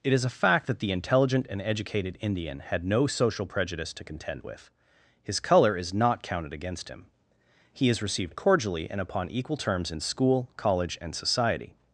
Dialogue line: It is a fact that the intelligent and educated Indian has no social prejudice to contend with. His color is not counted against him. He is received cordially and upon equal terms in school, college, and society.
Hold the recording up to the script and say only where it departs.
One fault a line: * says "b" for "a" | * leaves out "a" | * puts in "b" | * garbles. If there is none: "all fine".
* says "had" for "has"